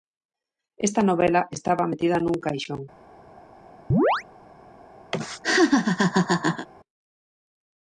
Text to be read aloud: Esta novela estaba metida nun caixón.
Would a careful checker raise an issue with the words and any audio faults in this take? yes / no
yes